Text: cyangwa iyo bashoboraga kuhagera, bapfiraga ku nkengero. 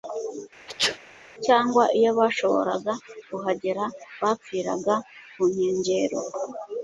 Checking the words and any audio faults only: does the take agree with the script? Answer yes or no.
no